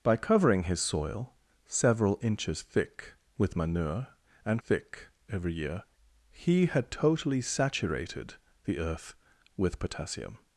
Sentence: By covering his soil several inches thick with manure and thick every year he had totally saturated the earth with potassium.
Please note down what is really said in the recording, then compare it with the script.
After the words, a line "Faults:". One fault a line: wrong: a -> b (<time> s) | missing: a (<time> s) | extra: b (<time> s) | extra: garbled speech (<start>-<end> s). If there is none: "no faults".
By covering his soil several inches thick with manure and thick every year he had totally saturated the earth with potassium.
Faults:
no faults